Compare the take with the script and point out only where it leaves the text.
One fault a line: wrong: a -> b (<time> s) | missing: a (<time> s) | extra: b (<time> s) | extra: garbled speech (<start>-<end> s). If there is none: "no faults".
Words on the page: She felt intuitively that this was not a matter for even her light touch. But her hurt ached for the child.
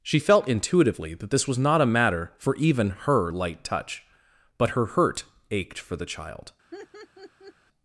no faults